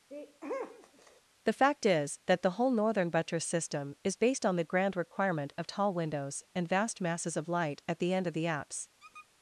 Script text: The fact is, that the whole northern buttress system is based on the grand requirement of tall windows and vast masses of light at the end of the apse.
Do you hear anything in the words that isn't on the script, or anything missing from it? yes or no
no